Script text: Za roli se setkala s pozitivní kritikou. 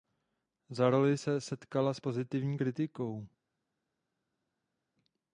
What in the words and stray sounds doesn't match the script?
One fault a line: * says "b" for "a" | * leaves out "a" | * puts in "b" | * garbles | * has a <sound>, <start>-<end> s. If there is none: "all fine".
all fine